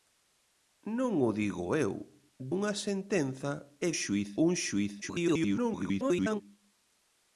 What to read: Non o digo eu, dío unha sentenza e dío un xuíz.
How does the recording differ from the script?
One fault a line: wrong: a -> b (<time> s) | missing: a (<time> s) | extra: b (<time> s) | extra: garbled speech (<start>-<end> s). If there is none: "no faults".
missing: dío (1.9 s)
wrong: dío -> xuíz (4.0 s)
extra: garbled speech (5.0-6.4 s)